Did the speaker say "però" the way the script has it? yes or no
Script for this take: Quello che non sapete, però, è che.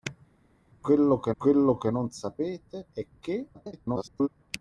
no